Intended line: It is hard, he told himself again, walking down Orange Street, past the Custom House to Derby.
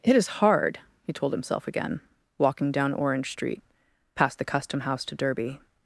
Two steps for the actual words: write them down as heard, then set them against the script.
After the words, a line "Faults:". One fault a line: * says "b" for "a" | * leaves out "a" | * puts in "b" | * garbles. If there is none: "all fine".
It is hard, he told himself again, walking down Orange Street, past the Custom House to Derby.
Faults:
all fine